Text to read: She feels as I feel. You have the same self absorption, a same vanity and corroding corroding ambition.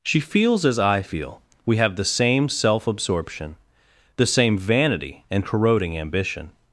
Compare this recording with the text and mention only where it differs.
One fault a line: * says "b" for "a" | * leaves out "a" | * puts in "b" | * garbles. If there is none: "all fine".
* says "We" for "You"
* says "the" for "a"
* leaves out "corroding"